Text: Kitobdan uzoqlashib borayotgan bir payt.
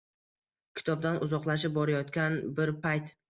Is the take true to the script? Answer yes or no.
yes